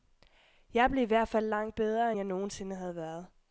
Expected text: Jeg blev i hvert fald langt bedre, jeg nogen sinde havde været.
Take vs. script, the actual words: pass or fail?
pass